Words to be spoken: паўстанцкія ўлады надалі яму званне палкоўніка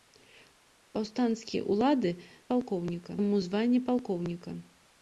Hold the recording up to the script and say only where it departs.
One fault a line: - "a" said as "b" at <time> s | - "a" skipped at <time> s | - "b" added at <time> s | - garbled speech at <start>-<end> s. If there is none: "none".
- "надалі" said as "палкоўніка" at 2.5 s